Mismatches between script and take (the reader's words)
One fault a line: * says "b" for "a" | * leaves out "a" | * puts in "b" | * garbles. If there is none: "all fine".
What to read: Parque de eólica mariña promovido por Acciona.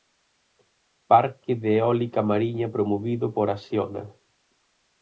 all fine